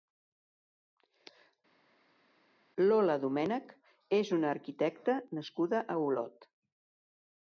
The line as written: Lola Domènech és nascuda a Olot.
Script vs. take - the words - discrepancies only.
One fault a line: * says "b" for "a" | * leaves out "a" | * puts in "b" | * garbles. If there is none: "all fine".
* puts in "una arquitecta"